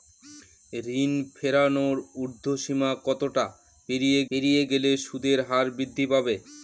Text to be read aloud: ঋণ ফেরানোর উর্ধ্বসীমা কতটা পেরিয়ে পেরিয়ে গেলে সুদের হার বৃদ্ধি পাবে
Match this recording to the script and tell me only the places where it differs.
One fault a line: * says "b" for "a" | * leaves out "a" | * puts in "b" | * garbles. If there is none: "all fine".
all fine